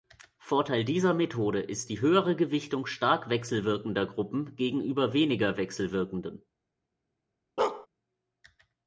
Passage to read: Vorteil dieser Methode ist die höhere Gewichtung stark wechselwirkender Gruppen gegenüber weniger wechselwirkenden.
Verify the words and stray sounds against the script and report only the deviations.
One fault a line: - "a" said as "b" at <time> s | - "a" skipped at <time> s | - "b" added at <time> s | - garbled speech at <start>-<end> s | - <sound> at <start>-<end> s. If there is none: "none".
- bark at 7.6-7.9 s